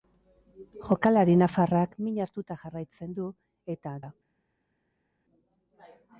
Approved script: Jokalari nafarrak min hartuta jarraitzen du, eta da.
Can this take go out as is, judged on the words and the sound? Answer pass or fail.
pass